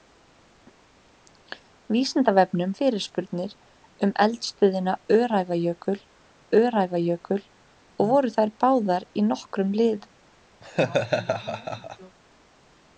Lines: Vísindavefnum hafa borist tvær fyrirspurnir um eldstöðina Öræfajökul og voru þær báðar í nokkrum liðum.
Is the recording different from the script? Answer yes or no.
yes